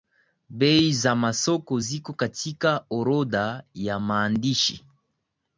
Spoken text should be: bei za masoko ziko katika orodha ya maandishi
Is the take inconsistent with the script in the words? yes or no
no